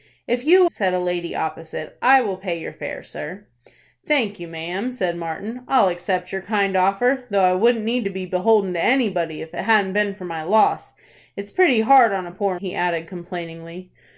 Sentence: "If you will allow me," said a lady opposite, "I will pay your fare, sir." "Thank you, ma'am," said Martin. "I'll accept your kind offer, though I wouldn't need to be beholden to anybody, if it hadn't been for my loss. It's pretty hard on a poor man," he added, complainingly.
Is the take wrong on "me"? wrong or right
wrong